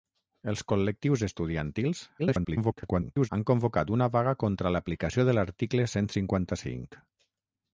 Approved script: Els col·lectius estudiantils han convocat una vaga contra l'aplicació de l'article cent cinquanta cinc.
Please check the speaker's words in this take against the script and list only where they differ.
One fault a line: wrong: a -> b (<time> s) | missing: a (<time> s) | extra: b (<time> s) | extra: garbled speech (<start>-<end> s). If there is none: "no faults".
extra: garbled speech (2.2-3.3 s)